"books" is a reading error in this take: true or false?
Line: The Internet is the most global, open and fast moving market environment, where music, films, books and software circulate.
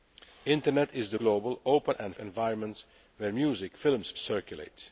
true